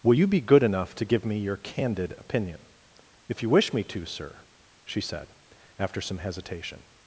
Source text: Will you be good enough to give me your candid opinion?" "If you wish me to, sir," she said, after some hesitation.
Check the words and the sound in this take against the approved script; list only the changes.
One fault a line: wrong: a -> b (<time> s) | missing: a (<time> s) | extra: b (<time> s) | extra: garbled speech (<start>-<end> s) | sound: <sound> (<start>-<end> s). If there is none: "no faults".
no faults